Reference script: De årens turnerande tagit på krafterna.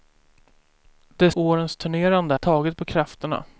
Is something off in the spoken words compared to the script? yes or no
no